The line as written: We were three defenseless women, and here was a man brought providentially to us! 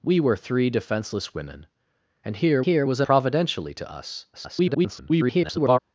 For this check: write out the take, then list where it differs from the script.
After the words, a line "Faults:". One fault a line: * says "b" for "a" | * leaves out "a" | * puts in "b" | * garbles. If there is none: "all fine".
We were three defenseless women, and here here was a providentially to us! [garbled]
Faults:
* puts in "here"
* leaves out "man brought"
* garbles